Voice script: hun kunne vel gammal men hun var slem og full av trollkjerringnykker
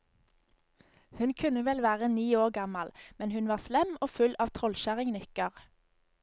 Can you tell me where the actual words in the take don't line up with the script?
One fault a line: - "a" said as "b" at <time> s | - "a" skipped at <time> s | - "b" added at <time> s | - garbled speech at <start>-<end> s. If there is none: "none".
- "være ni år" added at 1.9 s